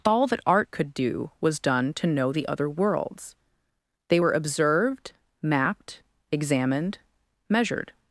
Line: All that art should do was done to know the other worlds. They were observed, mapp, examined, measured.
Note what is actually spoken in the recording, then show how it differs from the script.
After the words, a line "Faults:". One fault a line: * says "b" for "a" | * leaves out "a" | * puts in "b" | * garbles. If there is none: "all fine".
All that art could do was done to know the other worlds. They were observed, mapped, examined, measured.
Faults:
* says "could" for "should"
* says "mapped" for "mapp"